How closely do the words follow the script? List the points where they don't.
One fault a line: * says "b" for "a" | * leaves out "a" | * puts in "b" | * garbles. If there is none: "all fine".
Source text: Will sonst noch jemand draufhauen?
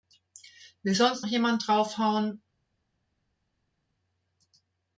* leaves out "noch"